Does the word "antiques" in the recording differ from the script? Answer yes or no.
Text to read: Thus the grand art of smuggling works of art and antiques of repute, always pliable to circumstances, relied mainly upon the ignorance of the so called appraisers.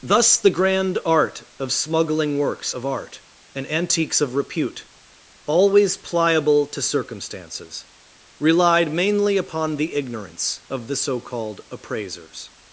no